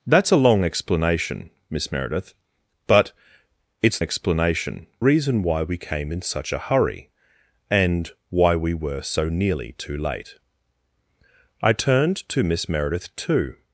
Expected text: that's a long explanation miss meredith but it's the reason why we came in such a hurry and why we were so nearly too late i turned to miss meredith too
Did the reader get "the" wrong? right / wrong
wrong